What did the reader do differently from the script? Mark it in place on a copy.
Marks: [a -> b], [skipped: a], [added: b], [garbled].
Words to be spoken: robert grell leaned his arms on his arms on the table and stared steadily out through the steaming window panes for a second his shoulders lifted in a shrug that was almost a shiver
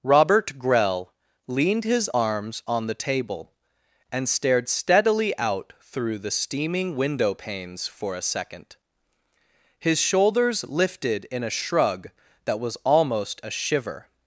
robert grell leaned his arms on [skipped: his arms on] the table and stared steadily out through the steaming window panes for a second his shoulders lifted in a shrug that was almost a shiver